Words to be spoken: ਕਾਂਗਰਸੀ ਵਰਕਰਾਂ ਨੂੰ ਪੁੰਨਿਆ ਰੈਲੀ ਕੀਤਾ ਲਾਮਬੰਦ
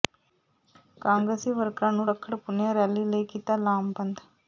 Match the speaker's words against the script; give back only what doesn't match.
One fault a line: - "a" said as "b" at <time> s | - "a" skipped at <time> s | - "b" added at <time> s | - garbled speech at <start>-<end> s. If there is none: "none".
- "ਰੱਖੜ" added at 2.1 s
- "ਲਈ" added at 3.0 s